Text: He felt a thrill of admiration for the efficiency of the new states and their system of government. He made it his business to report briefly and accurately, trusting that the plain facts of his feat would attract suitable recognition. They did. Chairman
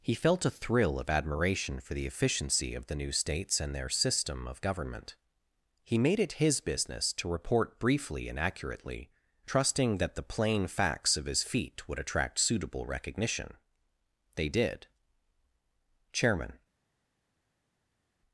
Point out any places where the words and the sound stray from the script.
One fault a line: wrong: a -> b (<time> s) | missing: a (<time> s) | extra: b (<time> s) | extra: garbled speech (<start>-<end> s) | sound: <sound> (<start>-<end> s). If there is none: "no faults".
no faults